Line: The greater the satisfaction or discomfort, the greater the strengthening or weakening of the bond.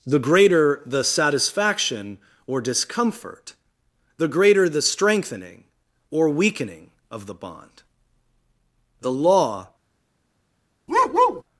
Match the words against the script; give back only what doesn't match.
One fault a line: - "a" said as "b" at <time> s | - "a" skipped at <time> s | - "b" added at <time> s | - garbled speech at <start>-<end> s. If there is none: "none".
- "The Law" added at 9.0 s